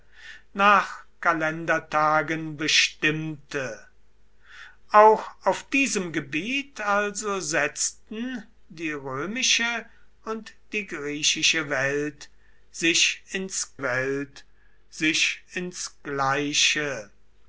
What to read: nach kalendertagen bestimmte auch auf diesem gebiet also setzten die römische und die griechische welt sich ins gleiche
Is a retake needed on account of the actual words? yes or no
yes